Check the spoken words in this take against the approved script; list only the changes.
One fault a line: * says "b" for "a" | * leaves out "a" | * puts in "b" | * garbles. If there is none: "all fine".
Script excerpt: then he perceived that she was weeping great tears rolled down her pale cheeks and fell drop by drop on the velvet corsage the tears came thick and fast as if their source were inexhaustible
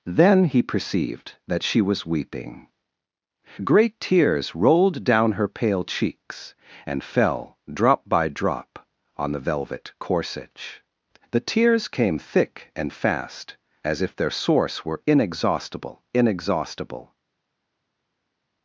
* puts in "inexhaustible"